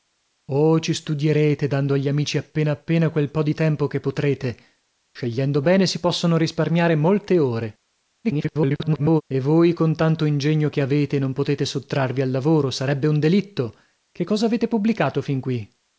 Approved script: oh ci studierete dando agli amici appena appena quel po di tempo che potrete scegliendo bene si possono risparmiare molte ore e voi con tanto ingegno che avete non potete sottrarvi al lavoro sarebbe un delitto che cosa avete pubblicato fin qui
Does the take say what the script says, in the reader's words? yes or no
no